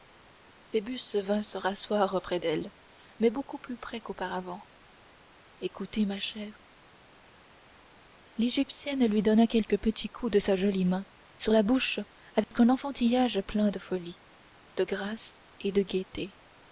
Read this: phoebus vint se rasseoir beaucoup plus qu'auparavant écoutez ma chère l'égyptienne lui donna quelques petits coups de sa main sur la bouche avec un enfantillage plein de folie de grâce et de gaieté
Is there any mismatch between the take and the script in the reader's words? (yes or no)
yes